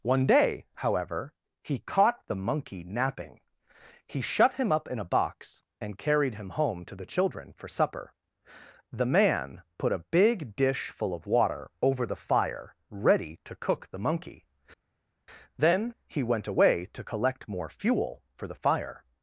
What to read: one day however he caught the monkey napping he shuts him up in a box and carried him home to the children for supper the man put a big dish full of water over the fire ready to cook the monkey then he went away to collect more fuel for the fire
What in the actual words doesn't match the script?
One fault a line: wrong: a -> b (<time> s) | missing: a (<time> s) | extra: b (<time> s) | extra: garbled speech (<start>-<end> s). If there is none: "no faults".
wrong: shuts -> shut (4.2 s)